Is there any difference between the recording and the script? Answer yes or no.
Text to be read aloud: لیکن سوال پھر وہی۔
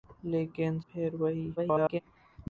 yes